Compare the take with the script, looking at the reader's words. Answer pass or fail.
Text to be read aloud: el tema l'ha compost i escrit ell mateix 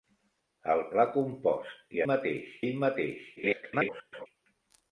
fail